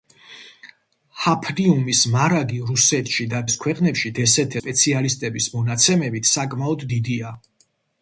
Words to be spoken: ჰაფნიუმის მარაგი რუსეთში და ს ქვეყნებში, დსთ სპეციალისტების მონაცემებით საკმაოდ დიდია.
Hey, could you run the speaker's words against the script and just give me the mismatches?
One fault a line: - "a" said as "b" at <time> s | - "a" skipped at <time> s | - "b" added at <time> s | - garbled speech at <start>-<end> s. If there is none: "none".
none